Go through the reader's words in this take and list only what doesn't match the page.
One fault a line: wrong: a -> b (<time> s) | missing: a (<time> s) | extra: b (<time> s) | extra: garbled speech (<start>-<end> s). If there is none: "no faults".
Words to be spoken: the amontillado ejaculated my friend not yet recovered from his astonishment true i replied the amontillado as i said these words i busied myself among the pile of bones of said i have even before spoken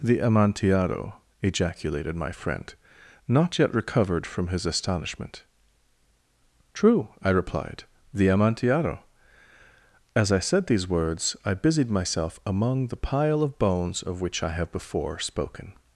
wrong: said -> which (14.2 s)
missing: even (14.7 s)